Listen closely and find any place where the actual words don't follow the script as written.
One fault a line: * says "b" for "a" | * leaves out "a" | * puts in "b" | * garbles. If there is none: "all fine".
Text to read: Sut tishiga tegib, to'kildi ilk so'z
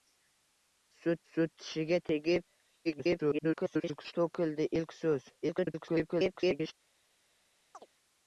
* puts in "sut"
* garbles
* garbles